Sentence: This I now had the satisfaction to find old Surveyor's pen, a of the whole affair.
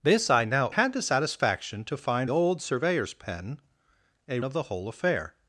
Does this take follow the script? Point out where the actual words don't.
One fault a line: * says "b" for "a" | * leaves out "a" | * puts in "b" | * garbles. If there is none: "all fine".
all fine